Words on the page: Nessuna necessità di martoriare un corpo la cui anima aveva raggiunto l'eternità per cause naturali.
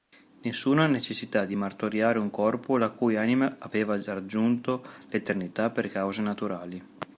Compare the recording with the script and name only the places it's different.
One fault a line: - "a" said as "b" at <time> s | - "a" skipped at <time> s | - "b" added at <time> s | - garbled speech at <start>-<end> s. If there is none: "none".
none